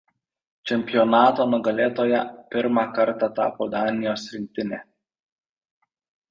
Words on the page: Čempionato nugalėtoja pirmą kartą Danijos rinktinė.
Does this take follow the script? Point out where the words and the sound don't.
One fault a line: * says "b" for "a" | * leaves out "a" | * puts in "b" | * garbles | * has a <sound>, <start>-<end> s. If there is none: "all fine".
* puts in "tapo"